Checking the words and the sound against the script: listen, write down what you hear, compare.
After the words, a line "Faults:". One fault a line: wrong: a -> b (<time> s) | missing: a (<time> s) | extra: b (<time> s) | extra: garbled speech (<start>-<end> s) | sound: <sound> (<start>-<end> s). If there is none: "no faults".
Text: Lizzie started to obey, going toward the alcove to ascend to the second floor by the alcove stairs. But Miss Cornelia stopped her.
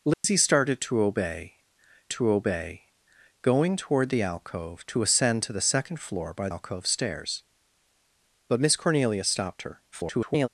Lizzie started to obey to obey, going toward the alcove to ascend to the second floor by alcove stairs. But Miss Cornelia stopped her. [garbled]
Faults:
sound: dropout (0.1-0.2 s)
extra: to obey (2.1 s)
missing: the (6.5 s)
extra: garbled speech (9.9-10.5 s)